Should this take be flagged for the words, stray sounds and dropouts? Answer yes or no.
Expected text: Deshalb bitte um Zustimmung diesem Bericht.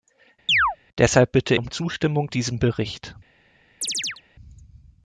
yes